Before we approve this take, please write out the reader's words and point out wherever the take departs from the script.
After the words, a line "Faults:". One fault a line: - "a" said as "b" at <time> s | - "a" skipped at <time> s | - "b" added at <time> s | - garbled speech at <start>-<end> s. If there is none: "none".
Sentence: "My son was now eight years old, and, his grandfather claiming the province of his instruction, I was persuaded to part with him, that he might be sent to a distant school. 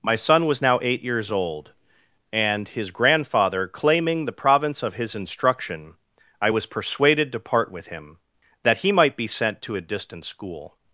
"My son was now eight years old, and, his grandfather claiming the province of his instruction, I was persuaded to part with him, that he might be sent to a distant school.
Faults:
none